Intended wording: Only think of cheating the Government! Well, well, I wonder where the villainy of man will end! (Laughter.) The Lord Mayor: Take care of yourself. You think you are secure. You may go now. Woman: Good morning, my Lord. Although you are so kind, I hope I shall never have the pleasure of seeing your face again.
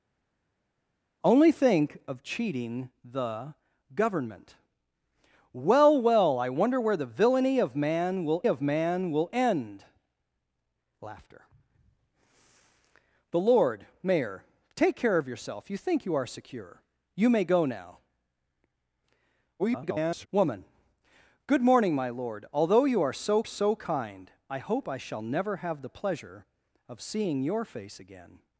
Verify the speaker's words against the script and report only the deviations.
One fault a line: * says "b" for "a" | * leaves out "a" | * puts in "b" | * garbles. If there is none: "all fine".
* puts in "of man will"
* garbles
* puts in "so"